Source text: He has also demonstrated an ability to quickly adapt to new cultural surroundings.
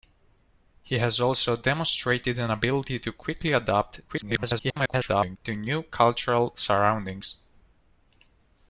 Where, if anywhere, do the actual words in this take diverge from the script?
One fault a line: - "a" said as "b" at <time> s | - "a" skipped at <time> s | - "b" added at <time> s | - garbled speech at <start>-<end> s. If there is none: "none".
- garbled speech at 4.1-5.4 s